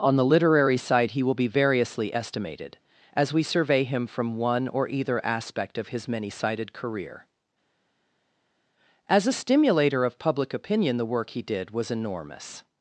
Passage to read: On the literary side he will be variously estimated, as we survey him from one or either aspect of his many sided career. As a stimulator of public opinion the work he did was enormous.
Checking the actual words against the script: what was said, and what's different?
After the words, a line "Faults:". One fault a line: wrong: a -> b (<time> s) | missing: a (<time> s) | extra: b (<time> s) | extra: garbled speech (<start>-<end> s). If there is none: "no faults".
On the literary side he will be variously estimated, as we survey him from one or either aspect of his many sided career. As a stimulator of public opinion the work he did was enormous.
Faults:
no faults